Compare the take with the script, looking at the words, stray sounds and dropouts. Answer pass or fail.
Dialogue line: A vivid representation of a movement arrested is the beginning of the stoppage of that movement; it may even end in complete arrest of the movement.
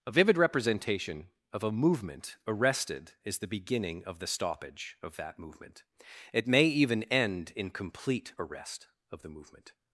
pass